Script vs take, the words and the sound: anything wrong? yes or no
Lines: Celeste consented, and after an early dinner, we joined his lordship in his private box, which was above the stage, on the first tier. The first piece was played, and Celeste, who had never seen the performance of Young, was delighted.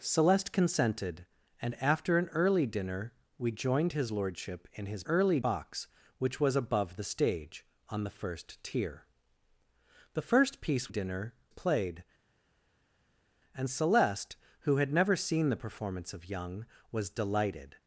yes